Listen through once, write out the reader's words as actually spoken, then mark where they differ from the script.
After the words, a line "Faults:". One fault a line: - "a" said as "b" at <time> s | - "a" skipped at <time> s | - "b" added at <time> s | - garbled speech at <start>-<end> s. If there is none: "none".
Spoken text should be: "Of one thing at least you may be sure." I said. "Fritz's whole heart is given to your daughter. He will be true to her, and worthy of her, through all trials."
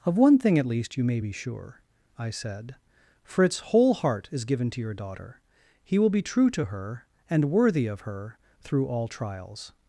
"Of one thing at least you may be sure." I said. "Fritz's whole heart is given to your daughter. He will be true to her, and worthy of her, through all trials."
Faults:
none